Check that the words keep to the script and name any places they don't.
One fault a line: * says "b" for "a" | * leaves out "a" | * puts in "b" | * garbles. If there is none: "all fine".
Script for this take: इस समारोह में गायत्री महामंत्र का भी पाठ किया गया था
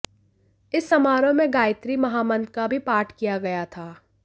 all fine